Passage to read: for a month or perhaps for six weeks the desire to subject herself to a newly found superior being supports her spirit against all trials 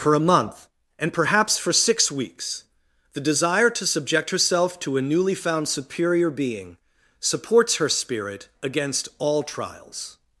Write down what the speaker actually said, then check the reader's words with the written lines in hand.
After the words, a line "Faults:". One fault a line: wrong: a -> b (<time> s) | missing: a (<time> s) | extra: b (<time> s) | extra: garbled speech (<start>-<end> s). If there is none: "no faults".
for a month and perhaps for six weeks the desire to subject herself to a newly found superior being supports her spirit against all trials
Faults:
wrong: or -> and (1.0 s)